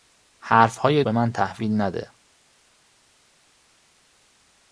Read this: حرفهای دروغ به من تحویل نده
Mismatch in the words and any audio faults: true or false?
true